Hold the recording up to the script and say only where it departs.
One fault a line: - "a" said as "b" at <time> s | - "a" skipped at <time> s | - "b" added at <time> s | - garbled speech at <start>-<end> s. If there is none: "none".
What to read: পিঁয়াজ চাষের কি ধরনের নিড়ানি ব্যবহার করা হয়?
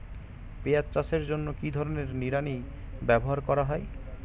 - "জন্য" added at 1.3 s